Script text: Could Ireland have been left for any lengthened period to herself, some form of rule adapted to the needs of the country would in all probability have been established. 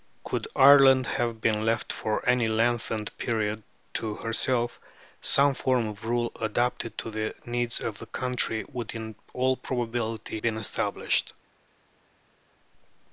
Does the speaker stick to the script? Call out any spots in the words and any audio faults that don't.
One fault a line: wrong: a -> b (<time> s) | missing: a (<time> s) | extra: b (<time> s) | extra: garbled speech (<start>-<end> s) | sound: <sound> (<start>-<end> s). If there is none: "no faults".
missing: have (10.4 s)